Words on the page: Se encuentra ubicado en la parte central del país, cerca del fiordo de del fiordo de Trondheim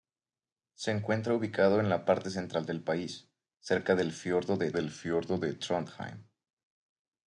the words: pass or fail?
pass